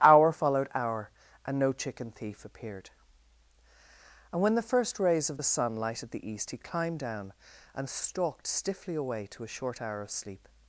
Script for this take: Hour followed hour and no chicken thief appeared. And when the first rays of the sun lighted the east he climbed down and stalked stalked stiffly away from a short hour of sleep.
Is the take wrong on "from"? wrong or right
wrong